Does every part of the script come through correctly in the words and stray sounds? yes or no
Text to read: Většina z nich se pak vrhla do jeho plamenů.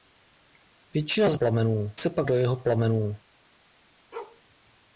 no